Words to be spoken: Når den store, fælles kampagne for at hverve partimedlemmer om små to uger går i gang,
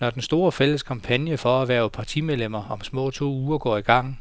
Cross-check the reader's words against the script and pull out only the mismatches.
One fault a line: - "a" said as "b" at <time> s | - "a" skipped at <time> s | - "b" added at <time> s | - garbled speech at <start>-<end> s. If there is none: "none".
none